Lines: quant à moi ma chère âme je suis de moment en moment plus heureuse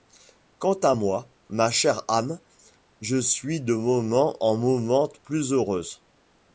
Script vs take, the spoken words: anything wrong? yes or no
no